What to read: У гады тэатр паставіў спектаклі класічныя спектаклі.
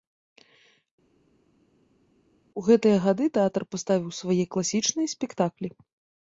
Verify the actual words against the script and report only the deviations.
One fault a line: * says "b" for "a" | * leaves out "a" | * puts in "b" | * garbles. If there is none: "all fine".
* puts in "гэтыя"
* says "свае" for "спектаклі"